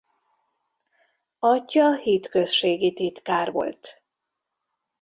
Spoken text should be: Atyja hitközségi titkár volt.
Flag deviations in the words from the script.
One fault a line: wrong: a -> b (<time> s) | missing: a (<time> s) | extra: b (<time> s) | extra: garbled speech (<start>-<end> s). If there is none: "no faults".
no faults